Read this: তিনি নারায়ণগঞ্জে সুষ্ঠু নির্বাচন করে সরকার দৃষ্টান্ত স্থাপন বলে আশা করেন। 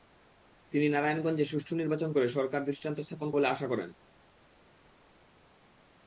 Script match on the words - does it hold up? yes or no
yes